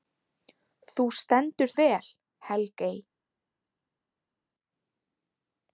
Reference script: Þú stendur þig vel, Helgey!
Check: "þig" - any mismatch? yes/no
yes